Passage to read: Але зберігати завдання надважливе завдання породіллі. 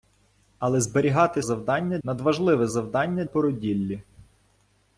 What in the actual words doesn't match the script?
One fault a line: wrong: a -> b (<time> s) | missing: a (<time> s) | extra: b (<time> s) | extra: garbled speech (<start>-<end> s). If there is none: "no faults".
no faults